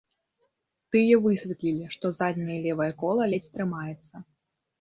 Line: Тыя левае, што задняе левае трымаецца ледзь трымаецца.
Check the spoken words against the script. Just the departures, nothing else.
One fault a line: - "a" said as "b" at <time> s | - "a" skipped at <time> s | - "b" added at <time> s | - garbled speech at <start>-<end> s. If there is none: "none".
- "левае" said as "высветлілі" at 1.2 s
- "трымаецца" said as "кола" at 3.0 s